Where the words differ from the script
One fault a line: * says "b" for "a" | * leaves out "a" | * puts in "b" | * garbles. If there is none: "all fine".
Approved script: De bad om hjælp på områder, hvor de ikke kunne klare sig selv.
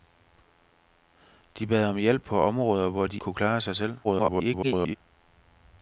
* leaves out "ikke"
* garbles